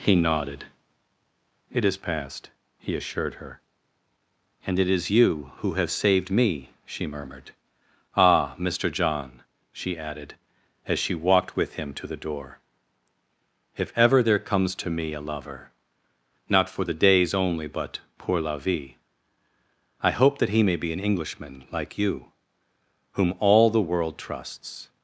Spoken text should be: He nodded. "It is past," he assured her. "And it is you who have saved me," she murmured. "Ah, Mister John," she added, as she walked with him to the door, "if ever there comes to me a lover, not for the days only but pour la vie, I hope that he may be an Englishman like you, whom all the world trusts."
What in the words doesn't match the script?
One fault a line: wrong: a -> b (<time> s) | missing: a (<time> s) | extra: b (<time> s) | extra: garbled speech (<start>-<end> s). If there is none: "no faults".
no faults